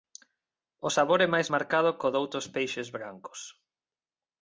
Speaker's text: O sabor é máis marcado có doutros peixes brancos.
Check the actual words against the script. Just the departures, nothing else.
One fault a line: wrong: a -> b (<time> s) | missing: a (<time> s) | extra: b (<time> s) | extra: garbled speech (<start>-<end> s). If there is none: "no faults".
no faults